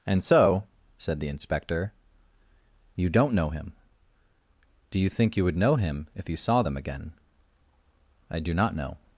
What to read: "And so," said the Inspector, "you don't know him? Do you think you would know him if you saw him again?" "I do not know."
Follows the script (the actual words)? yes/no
no